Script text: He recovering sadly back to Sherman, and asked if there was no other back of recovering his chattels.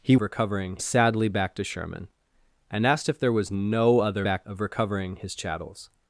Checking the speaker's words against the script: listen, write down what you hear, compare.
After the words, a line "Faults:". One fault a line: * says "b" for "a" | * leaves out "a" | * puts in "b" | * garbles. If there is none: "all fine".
He recovering sadly back to Sherman, and asked if there was no other back of recovering his chattels.
Faults:
all fine